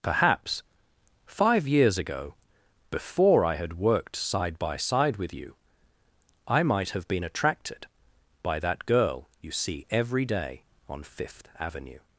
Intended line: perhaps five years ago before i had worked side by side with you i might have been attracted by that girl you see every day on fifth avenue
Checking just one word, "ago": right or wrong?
right